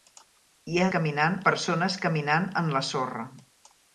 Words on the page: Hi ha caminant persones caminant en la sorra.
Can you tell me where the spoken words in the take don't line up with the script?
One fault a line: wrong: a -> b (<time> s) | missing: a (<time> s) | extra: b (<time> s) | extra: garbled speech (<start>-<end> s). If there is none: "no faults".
no faults